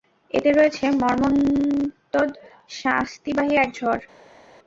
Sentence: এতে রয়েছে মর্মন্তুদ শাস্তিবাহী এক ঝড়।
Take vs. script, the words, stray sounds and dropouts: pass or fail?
pass